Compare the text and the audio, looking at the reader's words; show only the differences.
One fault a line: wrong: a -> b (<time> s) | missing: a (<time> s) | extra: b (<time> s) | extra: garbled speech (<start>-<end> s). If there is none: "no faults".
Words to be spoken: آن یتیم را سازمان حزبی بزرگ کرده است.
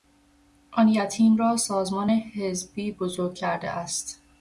no faults